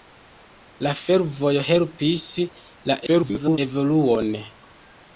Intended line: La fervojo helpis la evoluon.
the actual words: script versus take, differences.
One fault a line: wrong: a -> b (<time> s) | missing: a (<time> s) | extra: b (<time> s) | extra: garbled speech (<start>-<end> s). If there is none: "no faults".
extra: garbled speech (3.1-3.6 s)